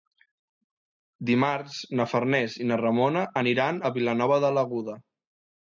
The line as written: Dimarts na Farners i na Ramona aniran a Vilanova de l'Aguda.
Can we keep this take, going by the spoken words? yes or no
yes